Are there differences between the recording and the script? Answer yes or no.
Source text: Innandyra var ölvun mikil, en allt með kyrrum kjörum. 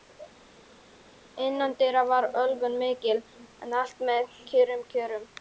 no